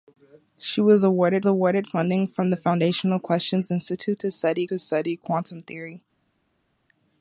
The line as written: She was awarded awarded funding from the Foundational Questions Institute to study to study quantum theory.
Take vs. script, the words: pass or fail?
pass